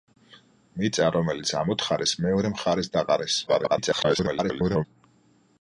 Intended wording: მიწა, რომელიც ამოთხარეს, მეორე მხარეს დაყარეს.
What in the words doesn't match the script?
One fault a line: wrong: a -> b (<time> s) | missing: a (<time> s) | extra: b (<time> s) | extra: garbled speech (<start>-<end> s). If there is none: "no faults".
extra: garbled speech (3.5-4.8 s)